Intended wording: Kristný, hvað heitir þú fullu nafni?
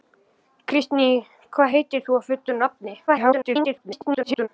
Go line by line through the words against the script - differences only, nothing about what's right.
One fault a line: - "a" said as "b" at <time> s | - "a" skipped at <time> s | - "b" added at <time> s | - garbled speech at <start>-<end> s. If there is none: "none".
- garbled speech at 3.1-4.5 s